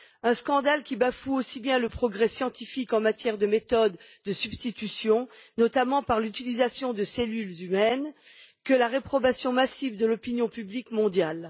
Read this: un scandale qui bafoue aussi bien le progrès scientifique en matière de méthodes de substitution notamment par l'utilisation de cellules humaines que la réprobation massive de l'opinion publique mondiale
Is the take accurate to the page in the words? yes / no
yes